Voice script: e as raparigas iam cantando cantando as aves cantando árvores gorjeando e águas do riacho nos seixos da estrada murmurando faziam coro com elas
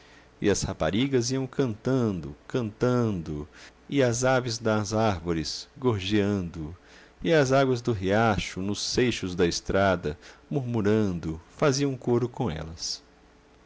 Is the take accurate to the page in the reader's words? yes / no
no